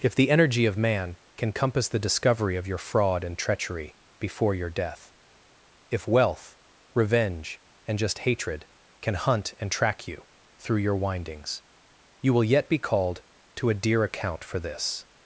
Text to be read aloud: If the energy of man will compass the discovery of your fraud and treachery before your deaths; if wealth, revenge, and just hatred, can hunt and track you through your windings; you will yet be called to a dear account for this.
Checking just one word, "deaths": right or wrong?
wrong